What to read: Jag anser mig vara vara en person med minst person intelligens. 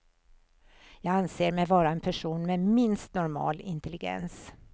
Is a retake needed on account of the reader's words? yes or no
yes